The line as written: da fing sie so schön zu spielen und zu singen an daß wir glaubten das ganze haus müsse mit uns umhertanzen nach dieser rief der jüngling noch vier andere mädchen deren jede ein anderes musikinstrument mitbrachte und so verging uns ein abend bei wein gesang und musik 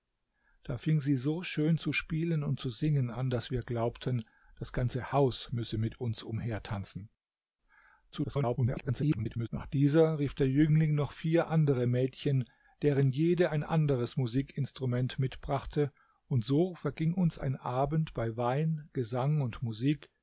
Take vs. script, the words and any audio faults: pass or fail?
fail